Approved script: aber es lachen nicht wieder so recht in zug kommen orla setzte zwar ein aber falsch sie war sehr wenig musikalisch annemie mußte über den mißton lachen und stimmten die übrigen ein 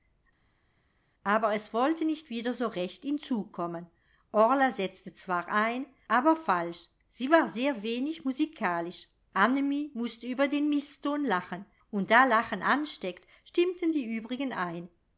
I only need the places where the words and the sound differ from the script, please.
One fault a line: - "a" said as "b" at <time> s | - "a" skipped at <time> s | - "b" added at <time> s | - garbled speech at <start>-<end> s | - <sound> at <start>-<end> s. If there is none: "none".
- "lachen" said as "wollte" at 1.7 s
- "da lachen ansteckt" added at 12.1 s